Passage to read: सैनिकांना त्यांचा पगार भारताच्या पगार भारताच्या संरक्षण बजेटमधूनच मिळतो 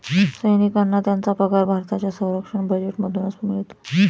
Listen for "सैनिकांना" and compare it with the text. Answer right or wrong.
right